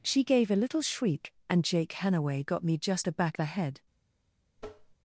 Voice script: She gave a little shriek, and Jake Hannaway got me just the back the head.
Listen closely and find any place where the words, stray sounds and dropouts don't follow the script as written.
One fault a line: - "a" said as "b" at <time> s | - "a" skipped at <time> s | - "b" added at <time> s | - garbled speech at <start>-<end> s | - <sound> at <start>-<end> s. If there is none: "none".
- tap at 4.6-5.0 s